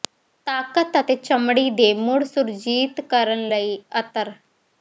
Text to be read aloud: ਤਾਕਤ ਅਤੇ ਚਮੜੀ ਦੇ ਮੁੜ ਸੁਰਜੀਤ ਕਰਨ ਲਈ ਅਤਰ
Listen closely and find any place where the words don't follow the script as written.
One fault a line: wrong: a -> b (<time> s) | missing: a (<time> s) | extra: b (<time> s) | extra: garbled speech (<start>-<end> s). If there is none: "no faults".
no faults